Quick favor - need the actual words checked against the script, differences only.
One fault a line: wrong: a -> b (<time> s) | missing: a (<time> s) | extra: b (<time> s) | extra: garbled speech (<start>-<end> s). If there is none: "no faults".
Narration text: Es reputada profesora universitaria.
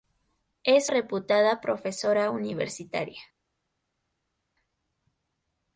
no faults